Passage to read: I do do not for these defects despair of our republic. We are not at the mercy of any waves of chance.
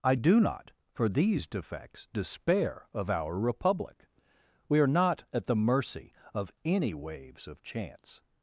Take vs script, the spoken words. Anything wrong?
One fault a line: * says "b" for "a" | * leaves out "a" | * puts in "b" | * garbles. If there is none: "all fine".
* leaves out "do"